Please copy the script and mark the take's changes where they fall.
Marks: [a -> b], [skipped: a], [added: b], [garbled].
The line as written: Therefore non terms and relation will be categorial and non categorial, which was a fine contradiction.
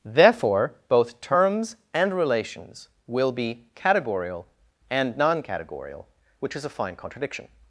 Therefore [non -> both] terms and [relation -> relations] will be categorial and non categorial, which [was -> is] a fine contradiction.